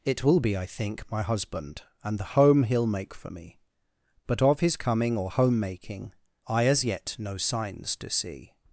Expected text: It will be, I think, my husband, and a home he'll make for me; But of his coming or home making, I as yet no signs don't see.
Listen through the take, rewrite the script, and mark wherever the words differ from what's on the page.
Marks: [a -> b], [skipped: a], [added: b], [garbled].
It will be, I think, my husband, and [a -> the] home he'll make for me; But of his coming or home making, I as yet no signs [don't -> do] see.